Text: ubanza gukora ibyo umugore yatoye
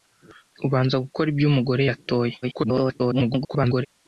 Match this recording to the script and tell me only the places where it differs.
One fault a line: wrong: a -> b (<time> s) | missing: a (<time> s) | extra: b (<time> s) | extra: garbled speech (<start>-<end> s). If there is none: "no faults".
extra: garbled speech (2.4-3.9 s)